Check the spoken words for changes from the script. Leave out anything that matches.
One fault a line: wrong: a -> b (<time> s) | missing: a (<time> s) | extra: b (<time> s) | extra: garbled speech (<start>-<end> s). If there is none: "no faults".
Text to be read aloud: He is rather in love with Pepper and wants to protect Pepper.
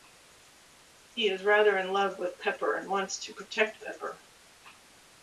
no faults